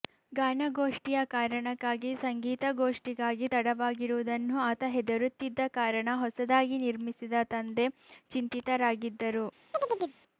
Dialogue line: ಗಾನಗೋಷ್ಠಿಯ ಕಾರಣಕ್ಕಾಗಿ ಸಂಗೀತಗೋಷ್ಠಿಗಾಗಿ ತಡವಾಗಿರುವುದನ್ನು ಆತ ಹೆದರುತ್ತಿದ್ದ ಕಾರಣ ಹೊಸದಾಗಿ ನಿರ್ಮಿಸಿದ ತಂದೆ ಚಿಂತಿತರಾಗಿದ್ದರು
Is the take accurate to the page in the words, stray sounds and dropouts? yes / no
no